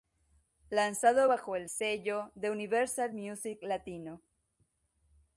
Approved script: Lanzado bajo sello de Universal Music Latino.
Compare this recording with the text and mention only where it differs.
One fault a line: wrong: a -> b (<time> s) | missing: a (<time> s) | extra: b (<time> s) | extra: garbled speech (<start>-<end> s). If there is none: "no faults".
extra: el (1.6 s)